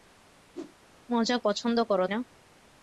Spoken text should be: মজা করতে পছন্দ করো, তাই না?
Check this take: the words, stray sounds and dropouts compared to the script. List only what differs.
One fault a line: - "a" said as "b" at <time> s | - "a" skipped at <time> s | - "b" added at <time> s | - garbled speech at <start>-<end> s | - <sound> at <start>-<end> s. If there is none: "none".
- whoosh at 0.5-0.8 s
- "করতে" skipped at 1.4 s
- "তাই" skipped at 2.0 s